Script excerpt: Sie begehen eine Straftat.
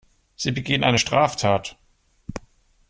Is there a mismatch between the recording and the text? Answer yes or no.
no